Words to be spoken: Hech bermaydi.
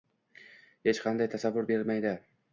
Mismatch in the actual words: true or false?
true